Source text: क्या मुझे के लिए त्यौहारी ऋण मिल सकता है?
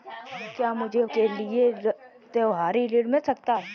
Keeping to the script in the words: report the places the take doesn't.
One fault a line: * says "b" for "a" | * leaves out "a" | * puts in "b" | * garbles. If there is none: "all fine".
all fine